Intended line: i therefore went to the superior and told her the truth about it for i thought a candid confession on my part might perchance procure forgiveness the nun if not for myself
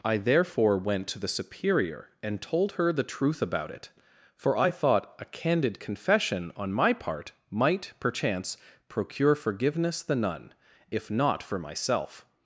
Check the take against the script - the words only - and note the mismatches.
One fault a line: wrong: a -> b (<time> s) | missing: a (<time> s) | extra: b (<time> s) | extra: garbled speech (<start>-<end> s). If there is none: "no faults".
no faults